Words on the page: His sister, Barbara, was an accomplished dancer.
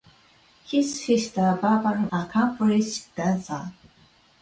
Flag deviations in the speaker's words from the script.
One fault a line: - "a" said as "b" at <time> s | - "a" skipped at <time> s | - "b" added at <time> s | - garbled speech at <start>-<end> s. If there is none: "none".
- "was" skipped at 2.1 s